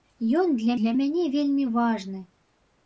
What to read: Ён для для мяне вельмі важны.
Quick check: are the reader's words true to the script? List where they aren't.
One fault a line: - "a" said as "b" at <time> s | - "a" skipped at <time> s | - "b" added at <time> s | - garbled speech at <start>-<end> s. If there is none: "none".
none